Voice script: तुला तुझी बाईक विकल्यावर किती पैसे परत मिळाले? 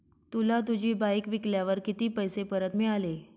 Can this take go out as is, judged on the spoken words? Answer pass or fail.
pass